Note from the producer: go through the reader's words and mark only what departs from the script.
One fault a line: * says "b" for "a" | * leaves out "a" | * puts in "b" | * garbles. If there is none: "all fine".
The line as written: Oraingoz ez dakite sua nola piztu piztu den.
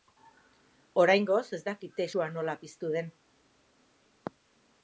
* leaves out "piztu"